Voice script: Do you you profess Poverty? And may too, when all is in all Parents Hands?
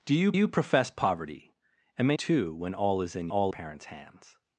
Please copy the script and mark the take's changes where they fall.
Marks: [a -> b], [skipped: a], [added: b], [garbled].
Do you you profess Poverty? And may too, when all is in all Parents Hands?